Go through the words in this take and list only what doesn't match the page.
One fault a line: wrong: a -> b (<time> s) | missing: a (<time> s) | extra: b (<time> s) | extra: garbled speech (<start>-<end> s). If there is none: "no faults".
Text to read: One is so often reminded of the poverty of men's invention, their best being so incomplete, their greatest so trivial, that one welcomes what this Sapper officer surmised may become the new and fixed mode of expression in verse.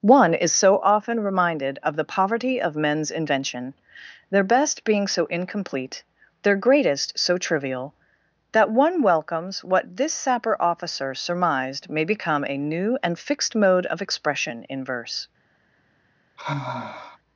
wrong: the -> a (12.4 s)